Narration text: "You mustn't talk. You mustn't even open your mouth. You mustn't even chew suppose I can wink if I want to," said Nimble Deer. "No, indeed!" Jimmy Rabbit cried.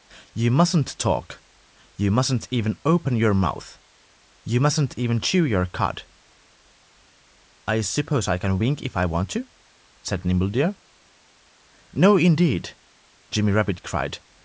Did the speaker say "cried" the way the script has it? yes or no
yes